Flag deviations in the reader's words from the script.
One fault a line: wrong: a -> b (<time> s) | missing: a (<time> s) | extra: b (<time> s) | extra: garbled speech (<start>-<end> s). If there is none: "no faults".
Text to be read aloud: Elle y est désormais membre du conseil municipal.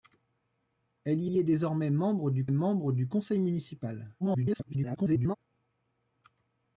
extra: y (1.3 s)
extra: membre du (2.5 s)
extra: garbled speech (4.2-5.4 s)